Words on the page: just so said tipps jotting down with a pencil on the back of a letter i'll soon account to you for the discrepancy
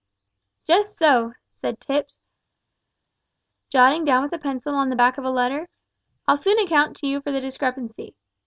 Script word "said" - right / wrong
right